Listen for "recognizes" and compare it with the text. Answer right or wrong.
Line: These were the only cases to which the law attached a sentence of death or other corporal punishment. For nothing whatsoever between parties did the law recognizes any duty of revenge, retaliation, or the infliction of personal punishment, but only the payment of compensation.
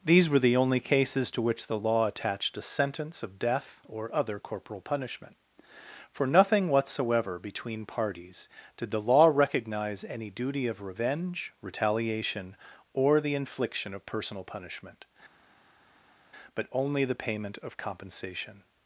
wrong